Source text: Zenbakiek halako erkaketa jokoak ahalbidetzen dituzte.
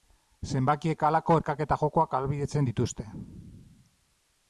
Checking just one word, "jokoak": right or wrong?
right